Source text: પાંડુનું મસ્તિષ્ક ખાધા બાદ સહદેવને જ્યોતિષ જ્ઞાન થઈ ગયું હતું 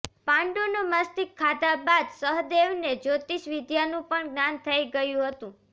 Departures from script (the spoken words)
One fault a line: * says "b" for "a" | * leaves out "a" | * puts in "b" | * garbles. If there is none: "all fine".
* puts in "વિદ્યાનું પણ"